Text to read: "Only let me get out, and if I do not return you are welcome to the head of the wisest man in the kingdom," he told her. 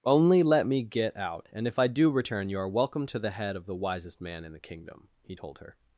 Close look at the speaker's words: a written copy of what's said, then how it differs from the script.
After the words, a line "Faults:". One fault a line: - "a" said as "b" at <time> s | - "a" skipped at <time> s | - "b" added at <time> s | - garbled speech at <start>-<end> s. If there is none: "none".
"Only let me get out, and if I do return you are welcome to the head of the wisest man in the kingdom," he told her.
Faults:
- "not" skipped at 2.1 s